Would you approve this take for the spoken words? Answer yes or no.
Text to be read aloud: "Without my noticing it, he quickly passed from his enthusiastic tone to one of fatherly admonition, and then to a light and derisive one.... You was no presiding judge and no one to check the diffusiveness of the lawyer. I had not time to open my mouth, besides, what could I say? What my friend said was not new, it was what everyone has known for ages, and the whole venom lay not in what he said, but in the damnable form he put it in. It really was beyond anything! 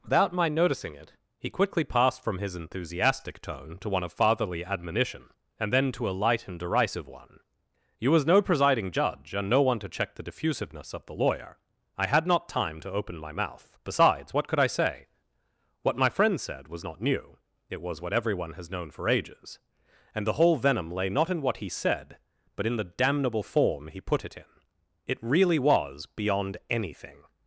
yes